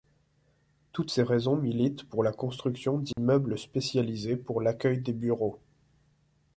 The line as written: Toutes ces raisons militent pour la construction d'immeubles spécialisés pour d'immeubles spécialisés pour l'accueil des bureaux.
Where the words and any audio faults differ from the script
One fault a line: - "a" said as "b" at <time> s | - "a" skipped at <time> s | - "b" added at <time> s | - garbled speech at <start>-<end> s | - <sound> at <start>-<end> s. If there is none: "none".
- dropout at 3.1-3.2 s
- "d'immeubles spécialisés pour" skipped at 4.6 s